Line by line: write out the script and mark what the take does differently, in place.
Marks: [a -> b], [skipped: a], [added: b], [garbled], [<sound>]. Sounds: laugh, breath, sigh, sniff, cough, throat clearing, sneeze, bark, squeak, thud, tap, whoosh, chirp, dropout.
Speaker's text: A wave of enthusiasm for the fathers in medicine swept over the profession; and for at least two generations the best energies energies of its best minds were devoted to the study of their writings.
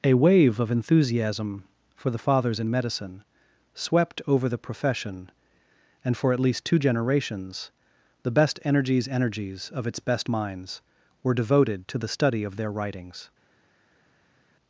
A wave of enthusiasm for the fathers in medicine swept over the profession; and for at least two generations the best energies energies of its best minds were devoted to the study of their writings.